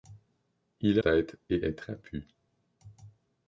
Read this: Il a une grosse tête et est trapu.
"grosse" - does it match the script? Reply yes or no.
no